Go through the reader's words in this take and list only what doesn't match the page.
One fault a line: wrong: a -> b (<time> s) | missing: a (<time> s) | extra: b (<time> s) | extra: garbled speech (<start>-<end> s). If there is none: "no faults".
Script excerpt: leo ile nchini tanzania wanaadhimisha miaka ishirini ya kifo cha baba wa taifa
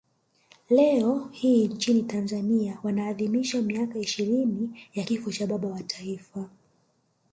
wrong: ile -> hii (1.3 s)